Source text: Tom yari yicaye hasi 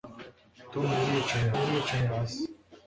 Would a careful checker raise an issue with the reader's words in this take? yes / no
yes